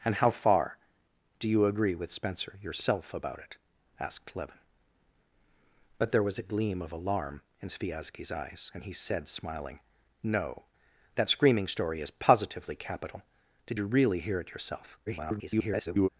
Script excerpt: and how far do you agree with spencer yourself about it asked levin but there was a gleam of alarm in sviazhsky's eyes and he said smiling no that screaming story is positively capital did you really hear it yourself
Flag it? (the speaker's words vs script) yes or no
yes